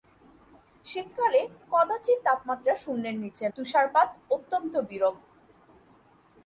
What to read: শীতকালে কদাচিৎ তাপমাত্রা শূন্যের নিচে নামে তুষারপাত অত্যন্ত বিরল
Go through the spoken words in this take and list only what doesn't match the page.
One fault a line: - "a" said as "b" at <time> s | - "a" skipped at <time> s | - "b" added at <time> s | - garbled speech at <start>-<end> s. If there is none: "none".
- "নামে" skipped at 3.5 s